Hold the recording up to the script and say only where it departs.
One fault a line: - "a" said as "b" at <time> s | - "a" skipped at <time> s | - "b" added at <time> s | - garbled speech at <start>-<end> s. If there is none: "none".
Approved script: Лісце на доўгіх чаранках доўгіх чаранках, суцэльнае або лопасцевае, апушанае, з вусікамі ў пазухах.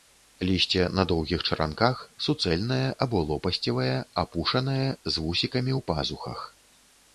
- "доўгіх чаранках" skipped at 2.0 s